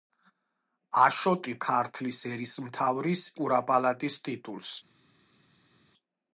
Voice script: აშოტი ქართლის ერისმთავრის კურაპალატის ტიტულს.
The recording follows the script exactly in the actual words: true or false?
true